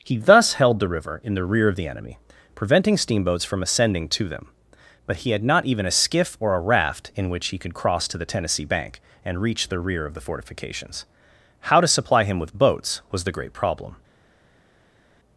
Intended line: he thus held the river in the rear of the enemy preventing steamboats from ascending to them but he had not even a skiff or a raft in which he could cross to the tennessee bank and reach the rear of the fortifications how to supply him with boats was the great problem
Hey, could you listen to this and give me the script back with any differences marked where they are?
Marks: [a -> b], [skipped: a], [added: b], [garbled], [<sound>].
he thus held the river in the rear of the enemy preventing steamboats from ascending to them but he had not even a skiff or a raft in which he could cross to the tennessee bank and reach the rear of the fortifications how to supply him with boats was the great problem